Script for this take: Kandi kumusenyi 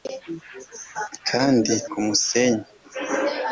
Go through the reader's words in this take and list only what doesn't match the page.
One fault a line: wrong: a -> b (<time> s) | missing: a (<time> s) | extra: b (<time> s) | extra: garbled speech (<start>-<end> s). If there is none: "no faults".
no faults